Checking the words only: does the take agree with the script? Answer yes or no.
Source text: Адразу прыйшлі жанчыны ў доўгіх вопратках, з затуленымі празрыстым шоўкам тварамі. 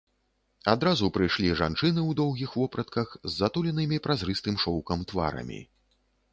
yes